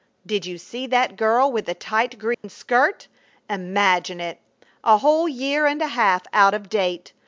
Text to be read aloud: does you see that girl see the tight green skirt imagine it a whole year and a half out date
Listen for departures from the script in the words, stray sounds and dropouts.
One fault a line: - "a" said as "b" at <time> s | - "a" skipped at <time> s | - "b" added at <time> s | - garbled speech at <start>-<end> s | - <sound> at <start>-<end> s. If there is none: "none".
- "does" said as "did" at 0.2 s
- "see" said as "with" at 1.5 s
- dropout at 2.3-2.4 s
- "of" added at 6.5 s